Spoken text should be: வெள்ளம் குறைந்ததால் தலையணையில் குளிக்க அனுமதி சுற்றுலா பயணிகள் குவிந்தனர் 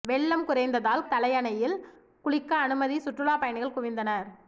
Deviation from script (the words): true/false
false